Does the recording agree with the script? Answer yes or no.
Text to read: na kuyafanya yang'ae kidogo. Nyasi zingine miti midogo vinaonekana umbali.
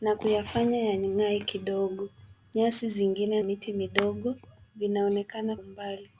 yes